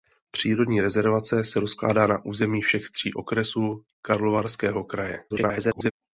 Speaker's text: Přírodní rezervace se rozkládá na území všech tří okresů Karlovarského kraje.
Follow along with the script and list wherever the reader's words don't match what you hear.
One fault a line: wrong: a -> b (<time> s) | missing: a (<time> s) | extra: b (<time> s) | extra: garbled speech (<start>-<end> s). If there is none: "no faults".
extra: garbled speech (5.3-5.9 s)